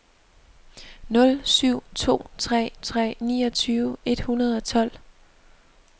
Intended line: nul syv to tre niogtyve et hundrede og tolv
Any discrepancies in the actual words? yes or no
yes